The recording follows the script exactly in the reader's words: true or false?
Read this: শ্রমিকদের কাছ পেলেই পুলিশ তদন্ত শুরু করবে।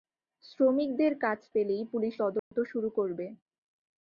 true